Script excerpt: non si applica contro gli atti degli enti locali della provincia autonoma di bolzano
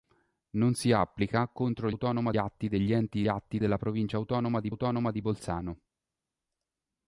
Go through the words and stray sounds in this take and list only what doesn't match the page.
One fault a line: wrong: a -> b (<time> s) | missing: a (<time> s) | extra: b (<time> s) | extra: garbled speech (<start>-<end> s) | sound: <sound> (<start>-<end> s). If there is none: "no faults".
wrong: gli -> autonoma (1.9 s)
wrong: locali -> atti (3.3 s)
extra: autonoma di (4.7 s)